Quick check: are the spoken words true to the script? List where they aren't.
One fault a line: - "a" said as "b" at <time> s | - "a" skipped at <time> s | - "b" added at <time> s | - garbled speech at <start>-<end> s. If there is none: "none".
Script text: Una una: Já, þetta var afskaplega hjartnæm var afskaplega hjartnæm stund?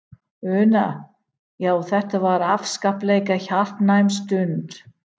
- "una" skipped at 0.8 s
- "var afskaplega hjartnæm" skipped at 4.2 s